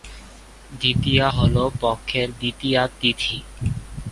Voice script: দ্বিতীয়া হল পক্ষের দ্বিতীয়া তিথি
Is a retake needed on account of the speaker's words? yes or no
no